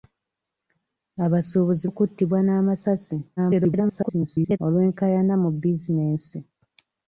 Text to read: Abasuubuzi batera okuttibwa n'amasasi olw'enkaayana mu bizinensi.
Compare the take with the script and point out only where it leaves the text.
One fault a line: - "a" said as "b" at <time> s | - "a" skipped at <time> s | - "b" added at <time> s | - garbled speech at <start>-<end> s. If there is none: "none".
- "batera" skipped at 1.9 s
- garbled speech at 3.4-4.6 s